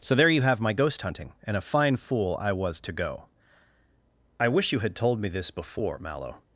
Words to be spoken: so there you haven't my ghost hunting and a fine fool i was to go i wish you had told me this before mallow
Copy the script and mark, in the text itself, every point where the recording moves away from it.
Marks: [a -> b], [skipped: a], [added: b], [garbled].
so there you [haven't -> have] my ghost hunting and a fine fool i was to go i wish you had told me this before mallow